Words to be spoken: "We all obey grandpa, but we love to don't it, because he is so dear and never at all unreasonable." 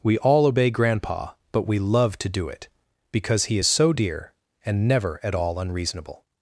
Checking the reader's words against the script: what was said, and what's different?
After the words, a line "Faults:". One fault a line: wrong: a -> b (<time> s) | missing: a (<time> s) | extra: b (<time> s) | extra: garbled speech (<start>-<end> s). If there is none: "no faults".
"We all obey grandpa, but we love to do it, because he is so dear and never at all unreasonable."
Faults:
wrong: don't -> do (2.3 s)